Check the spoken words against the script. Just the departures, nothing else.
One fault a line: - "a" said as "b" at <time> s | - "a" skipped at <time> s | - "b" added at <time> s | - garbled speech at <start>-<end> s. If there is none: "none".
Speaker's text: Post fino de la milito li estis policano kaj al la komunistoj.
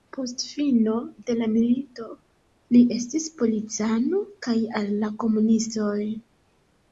none